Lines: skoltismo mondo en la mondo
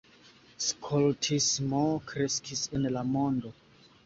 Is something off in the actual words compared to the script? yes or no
yes